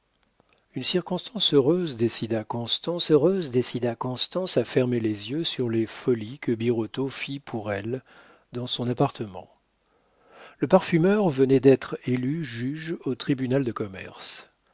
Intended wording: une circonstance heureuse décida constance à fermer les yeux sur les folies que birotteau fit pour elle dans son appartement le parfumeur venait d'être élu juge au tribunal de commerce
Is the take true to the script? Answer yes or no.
no